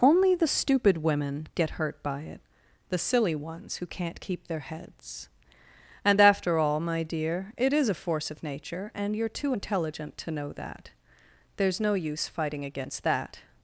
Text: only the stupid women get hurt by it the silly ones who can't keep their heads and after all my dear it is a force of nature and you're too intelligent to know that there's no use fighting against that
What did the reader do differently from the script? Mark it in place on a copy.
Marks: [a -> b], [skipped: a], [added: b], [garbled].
only the stupid women get hurt by it the silly ones who can't keep their heads and after all my dear it is a force of nature and you're too intelligent to know that there's no use fighting against that